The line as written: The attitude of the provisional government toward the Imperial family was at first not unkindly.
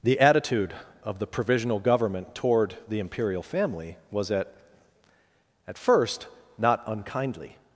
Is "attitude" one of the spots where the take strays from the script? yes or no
no